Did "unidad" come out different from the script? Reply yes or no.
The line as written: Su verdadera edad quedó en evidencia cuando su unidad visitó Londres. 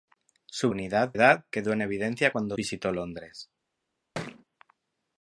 yes